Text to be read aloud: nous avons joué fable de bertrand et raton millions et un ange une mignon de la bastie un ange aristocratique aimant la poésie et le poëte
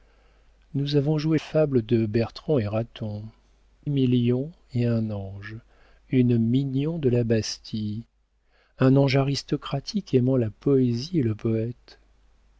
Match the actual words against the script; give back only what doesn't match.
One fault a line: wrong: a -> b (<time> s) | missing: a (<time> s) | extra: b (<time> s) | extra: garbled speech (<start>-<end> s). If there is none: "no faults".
no faults